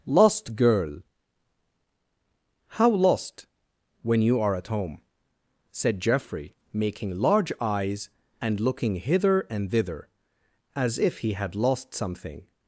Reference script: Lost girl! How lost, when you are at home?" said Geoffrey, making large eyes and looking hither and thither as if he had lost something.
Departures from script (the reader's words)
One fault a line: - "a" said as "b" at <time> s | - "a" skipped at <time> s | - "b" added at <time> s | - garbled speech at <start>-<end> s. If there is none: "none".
none